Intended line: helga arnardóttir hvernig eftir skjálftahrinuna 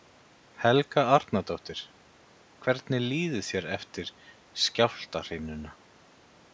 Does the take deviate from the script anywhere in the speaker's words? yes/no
yes